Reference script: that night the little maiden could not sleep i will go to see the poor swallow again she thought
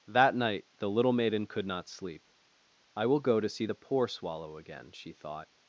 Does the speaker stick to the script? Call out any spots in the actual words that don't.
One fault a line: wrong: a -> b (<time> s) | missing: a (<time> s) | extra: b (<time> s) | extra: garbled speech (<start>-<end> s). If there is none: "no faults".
no faults